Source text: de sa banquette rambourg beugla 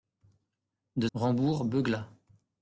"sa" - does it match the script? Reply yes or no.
no